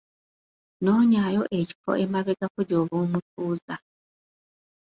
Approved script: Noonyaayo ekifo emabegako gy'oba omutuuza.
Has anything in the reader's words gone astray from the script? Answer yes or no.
no